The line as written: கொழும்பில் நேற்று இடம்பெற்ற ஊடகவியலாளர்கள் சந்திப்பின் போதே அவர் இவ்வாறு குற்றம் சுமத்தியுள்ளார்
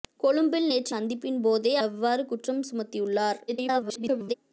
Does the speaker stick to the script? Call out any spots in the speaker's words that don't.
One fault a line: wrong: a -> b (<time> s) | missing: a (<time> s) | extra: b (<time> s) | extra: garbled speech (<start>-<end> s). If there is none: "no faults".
missing: இடம்பெற்ற ஊடகவியலாளர்கள் (0.9 s)
missing: அவர் (1.7 s)
extra: garbled speech (3.5-4.3 s)